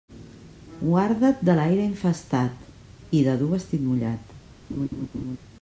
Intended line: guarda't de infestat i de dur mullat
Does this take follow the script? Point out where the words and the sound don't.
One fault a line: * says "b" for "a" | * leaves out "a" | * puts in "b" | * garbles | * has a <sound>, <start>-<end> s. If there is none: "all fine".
* puts in "l'aire"
* puts in "vestit"
* has a laugh, 4.7-5.4 s